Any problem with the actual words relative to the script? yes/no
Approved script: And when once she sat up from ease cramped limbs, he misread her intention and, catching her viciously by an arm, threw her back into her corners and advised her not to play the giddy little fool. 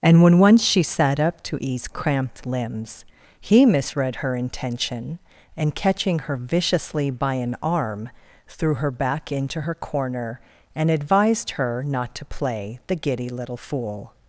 yes